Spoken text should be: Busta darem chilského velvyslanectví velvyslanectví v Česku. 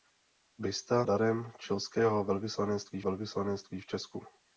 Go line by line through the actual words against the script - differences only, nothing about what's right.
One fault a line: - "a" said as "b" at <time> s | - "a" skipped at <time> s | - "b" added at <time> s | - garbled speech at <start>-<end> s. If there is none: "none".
none